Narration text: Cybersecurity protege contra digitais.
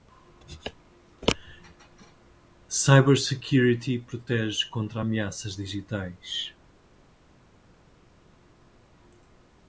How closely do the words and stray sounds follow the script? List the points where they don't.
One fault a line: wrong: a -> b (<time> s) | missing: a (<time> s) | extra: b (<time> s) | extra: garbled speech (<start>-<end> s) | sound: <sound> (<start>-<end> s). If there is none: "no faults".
extra: ameaças (5.0 s)